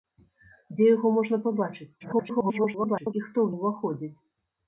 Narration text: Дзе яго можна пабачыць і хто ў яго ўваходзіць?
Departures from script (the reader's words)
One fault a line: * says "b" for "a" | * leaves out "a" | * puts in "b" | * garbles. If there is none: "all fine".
* garbles
* leaves out "яго"